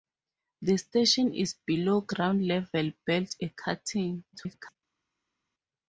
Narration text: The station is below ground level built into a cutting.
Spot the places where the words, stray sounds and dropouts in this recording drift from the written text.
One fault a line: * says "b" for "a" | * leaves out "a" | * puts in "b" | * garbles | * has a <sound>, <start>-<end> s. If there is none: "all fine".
* leaves out "into"
* garbles